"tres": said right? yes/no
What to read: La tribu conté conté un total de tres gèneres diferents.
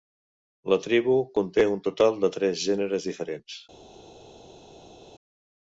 yes